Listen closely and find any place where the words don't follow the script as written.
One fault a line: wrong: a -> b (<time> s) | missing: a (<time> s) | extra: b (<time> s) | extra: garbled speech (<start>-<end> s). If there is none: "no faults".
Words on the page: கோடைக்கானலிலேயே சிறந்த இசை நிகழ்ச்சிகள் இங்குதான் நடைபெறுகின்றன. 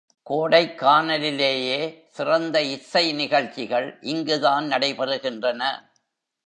no faults